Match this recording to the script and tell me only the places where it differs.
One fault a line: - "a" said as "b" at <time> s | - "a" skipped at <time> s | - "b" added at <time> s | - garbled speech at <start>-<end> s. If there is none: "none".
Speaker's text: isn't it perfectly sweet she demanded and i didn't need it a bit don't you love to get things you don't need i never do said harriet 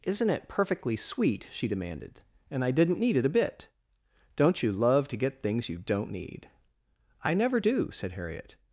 none